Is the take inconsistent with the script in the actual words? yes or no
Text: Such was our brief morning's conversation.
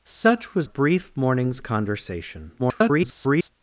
yes